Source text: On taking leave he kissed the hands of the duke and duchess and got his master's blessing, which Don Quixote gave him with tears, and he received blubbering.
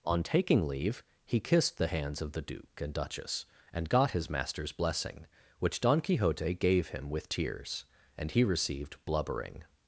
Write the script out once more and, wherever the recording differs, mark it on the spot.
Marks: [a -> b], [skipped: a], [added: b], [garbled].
On taking leave he kissed the hands of the duke and duchess and got his master's blessing, which Don Quixote gave him with tears, and he received blubbering.